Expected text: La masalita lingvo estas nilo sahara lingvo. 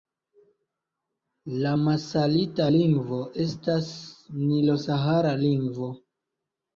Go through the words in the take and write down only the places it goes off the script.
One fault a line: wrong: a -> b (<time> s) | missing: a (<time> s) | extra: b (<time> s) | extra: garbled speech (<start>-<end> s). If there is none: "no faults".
no faults